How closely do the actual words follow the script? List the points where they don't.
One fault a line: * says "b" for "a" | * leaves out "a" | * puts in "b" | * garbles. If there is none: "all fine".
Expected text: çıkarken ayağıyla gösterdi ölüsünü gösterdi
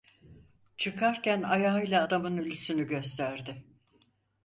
* says "adamın" for "gösterdi"